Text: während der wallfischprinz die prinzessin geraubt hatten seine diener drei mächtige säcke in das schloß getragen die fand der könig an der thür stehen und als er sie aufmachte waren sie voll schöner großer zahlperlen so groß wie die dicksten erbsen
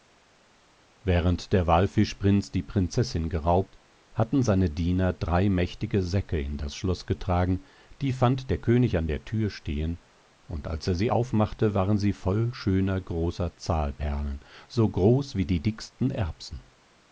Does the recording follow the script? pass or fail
pass